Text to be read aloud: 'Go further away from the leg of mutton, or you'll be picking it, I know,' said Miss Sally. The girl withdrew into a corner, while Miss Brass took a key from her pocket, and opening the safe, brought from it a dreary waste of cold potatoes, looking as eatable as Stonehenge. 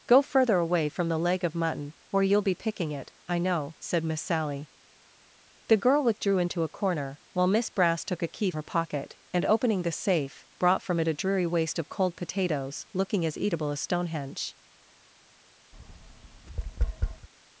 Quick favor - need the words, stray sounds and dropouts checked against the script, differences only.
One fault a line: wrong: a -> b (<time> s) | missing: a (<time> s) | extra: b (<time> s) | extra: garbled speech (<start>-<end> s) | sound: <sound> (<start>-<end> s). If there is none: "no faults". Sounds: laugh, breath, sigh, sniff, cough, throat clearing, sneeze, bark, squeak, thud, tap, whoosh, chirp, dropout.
missing: from (8.5 s)
sound: tap (15.7-17.3 s)